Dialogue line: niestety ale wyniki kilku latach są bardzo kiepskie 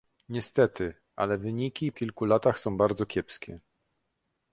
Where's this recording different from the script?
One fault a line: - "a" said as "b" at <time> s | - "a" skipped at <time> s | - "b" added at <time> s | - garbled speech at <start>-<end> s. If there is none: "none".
none